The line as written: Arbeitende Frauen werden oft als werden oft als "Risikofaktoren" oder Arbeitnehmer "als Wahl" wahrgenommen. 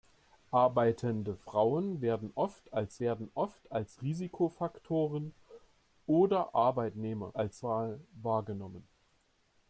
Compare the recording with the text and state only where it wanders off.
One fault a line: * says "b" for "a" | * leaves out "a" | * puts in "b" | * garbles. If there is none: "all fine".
all fine